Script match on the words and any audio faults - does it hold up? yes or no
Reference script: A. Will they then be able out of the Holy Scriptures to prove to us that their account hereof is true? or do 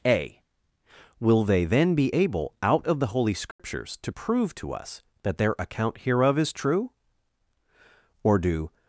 no